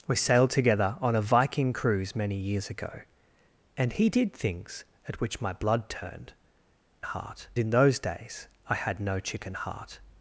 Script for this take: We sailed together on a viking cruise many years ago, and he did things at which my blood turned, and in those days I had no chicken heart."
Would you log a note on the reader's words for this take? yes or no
yes